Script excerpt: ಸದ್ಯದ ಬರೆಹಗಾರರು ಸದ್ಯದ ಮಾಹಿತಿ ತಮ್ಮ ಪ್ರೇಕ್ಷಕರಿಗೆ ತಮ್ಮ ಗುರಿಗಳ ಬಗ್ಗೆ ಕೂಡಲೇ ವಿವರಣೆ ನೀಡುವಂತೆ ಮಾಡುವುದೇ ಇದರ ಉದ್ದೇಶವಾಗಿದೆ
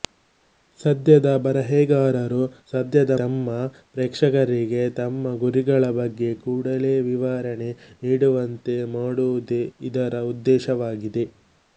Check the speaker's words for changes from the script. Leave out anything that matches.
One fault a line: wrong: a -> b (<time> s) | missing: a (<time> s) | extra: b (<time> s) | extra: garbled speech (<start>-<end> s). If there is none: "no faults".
missing: ಮಾಹಿತಿ (3.1 s)